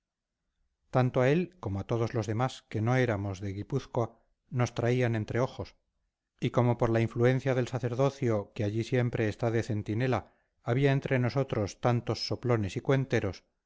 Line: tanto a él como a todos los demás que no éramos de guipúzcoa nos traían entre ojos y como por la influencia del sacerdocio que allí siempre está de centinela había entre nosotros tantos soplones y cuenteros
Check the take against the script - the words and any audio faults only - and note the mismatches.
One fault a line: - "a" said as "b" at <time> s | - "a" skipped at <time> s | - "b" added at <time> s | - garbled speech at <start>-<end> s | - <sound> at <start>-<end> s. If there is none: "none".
none